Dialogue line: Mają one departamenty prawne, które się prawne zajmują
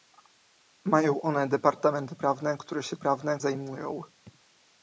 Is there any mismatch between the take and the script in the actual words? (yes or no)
no